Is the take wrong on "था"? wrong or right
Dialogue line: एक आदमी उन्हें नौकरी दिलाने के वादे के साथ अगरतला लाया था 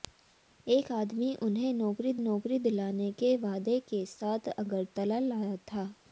right